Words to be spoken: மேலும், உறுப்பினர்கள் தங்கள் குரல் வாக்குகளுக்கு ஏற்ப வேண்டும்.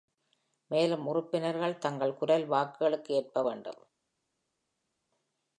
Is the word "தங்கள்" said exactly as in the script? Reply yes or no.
yes